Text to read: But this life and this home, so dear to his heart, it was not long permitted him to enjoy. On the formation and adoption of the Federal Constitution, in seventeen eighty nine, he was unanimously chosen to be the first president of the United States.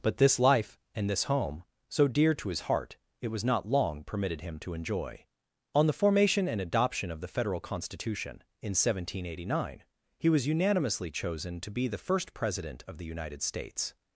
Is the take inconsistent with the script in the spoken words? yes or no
no